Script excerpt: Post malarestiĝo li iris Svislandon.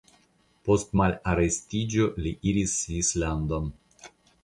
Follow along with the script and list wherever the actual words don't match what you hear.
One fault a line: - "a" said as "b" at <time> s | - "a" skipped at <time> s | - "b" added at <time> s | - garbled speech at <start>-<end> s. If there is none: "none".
none